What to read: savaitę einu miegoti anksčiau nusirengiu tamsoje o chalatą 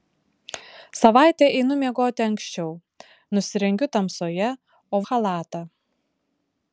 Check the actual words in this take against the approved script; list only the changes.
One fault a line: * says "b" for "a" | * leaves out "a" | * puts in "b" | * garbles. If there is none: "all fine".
all fine